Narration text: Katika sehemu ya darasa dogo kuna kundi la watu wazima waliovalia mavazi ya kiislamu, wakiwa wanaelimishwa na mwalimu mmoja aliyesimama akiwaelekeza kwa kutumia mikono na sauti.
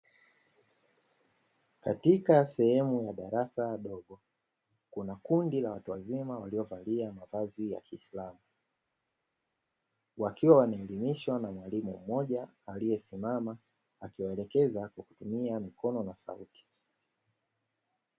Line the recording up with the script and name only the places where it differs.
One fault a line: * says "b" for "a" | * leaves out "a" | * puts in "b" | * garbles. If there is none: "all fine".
all fine